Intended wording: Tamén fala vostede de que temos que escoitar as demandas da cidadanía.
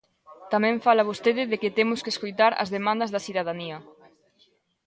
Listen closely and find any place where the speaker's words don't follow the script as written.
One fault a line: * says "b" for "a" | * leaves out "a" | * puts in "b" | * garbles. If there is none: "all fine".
all fine